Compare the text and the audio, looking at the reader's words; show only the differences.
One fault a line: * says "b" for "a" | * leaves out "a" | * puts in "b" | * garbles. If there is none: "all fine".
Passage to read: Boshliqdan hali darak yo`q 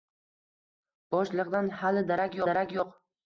* puts in "darak"